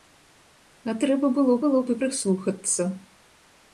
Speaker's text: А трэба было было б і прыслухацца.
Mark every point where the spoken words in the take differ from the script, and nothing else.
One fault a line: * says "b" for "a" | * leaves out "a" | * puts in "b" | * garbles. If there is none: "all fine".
all fine